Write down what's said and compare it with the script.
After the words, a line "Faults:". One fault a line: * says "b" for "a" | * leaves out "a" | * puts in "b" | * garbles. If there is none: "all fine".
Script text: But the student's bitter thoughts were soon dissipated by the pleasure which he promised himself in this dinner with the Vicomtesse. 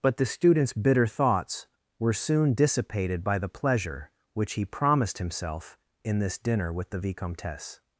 But the student's bitter thoughts were soon dissipated by the pleasure which he promised himself in this dinner with the Vicomtesse.
Faults:
all fine